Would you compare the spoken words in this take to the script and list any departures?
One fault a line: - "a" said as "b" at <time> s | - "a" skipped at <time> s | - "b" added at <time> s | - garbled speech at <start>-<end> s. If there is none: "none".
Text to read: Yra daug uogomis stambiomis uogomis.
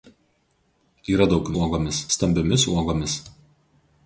none